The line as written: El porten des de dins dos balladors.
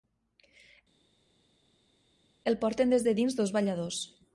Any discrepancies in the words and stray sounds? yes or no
no